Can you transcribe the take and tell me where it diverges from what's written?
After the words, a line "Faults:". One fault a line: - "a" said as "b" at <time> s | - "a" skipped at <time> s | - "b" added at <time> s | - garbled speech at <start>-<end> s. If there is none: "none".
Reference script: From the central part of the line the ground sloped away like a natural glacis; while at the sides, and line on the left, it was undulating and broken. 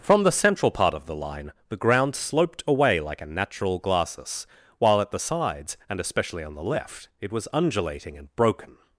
From the central part of the line the ground sloped away like a natural glacis; while at the sides, and especially on the left, it was undulating and broken.
Faults:
- "line" said as "especially" at 6.0 s